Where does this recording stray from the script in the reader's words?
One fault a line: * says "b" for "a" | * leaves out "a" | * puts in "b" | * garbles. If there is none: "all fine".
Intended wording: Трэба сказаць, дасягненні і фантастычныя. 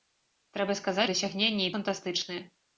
all fine